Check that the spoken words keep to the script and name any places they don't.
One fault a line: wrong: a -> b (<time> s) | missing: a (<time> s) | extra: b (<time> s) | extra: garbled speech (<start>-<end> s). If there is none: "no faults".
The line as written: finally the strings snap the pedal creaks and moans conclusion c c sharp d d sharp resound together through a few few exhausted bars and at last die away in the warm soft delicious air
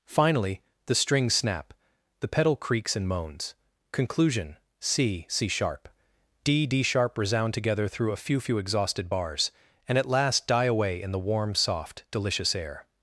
no faults